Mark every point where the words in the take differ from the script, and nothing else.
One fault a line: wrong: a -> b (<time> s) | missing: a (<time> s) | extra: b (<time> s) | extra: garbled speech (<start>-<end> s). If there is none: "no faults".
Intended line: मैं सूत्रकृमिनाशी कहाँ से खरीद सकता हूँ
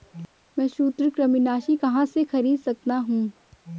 no faults